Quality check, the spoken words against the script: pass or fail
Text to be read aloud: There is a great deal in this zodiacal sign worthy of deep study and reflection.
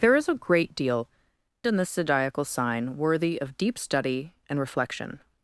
pass